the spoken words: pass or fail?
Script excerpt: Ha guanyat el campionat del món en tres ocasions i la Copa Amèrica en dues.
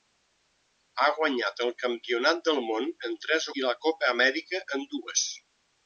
fail